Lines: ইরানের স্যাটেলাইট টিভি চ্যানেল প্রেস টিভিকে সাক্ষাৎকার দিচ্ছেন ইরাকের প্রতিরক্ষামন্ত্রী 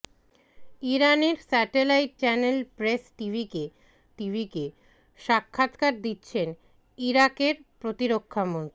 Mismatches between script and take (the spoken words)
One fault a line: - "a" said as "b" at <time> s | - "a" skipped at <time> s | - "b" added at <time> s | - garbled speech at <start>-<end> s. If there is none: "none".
- "টিভি" skipped at 2.1 s
- "টিভিকে" added at 4.2 s